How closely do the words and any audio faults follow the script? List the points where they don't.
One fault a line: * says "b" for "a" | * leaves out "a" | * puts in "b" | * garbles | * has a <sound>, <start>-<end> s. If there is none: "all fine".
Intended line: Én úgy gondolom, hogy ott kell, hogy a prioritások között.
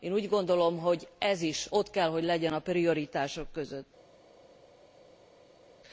* puts in "ez is"
* puts in "legyen"